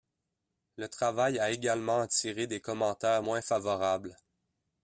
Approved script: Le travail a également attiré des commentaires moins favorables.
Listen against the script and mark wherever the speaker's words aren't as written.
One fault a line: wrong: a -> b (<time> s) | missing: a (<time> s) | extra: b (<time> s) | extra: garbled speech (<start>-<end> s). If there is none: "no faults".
no faults